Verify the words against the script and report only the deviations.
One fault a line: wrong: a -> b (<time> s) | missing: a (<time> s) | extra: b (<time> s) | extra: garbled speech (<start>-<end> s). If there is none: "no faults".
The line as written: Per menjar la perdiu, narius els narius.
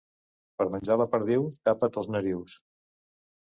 wrong: narius -> tapa't (1.7 s)